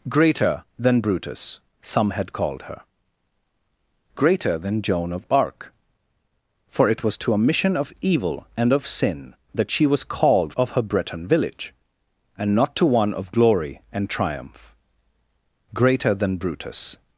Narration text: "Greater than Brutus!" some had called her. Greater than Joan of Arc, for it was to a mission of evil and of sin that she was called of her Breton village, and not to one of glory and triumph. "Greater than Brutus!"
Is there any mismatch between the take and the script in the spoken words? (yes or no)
no